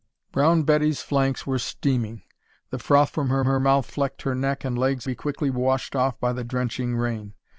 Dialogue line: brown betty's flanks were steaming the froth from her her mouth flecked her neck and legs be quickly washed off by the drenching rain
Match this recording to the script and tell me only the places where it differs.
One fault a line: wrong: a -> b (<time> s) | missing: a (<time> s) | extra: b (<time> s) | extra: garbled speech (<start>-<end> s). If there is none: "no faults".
no faults